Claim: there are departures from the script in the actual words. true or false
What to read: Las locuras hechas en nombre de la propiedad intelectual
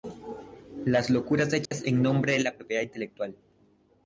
false